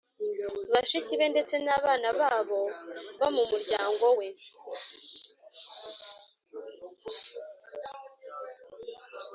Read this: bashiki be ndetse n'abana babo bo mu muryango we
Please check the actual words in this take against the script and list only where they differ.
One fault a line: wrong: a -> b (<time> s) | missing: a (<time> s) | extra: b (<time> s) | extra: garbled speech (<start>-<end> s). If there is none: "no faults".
no faults